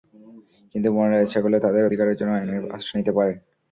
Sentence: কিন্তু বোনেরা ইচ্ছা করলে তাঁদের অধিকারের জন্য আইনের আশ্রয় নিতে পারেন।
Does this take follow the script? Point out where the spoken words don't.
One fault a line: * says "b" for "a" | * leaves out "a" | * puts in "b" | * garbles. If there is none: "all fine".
all fine